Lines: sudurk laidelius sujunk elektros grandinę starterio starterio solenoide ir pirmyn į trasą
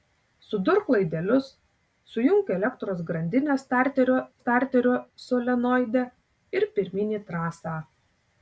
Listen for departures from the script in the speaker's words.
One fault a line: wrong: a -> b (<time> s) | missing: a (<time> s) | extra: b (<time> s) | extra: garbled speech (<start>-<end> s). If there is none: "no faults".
no faults